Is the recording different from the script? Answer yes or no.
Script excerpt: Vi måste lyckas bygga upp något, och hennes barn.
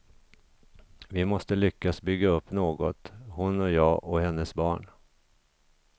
yes